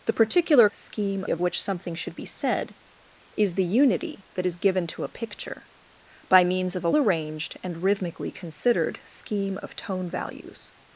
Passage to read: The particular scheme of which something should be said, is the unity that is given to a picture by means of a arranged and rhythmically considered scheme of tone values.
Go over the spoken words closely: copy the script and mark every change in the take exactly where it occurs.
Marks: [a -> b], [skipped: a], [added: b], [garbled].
The particular scheme of which something should be said, is the unity that is given to a picture by means of a arranged and rhythmically considered scheme of tone values.